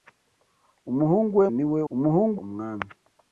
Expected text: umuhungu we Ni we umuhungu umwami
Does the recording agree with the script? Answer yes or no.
yes